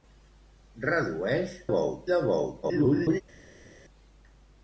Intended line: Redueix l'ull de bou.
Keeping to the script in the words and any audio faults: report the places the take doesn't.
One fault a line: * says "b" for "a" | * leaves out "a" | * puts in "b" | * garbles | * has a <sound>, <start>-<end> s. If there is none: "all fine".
* says "bou" for "l'ull"
* garbles